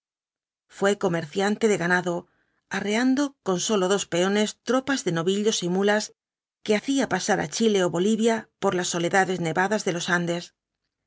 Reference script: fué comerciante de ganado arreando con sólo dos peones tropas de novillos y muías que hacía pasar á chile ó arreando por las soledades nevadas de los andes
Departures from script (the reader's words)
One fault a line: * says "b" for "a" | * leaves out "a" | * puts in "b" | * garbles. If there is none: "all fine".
* says "bolivia" for "arreando"